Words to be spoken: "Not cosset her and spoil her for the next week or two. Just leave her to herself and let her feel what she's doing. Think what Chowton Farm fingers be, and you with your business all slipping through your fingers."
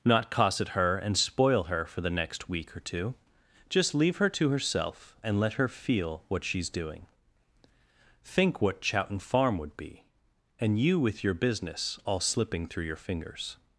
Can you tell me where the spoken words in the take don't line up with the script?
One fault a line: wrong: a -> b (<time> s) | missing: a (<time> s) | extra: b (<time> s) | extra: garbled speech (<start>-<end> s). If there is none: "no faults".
wrong: fingers -> would (9.6 s)